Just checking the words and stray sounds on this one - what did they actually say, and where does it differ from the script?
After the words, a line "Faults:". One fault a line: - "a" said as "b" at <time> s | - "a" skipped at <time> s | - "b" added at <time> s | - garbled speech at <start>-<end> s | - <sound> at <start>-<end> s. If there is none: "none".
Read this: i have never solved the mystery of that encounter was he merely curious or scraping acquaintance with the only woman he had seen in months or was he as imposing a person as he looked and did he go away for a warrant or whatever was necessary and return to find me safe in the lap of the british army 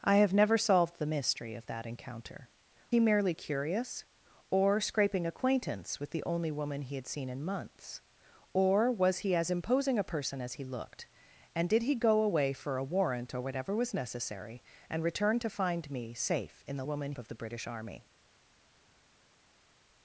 i have never solved the mystery of that encounter he merely curious or scraping acquaintance with the only woman he had seen in months or was he as imposing a person as he looked and did he go away for a warrant or whatever was necessary and return to find me safe in the woman of the british army
Faults:
- "was" skipped at 2.5 s
- "lap" said as "woman" at 16.8 s